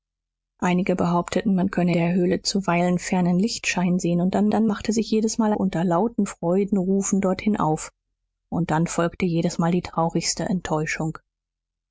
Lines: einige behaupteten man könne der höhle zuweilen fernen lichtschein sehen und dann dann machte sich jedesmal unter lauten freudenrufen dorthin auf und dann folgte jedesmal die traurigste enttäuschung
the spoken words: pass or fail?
pass